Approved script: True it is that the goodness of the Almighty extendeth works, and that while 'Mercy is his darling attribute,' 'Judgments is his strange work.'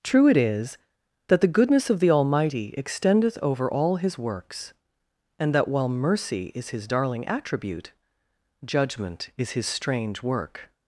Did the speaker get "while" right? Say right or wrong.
right